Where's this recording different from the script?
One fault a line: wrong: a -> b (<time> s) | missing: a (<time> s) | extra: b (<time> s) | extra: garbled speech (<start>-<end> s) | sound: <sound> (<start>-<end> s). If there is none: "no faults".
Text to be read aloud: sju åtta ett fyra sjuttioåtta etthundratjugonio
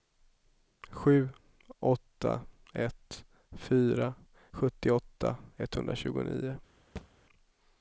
sound: thud (7.0-7.1 s)